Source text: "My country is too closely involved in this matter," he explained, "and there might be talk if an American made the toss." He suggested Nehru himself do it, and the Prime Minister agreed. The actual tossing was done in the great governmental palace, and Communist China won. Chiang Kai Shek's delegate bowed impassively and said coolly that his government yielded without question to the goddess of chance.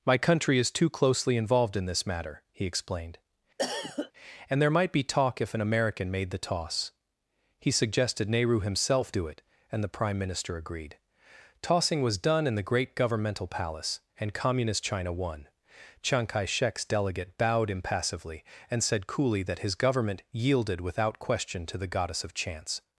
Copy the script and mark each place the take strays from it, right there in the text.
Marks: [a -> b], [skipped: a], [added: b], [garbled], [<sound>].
"My country is too closely involved in this matter," he explained, [cough] "and there might be talk if an American made the toss." He suggested Nehru himself do it, and the Prime Minister agreed. [skipped: The actual] tossing was done in the great governmental palace, and Communist China won. Chiang Kai Shek's delegate bowed impassively and said coolly that his government yielded without question to the goddess of chance.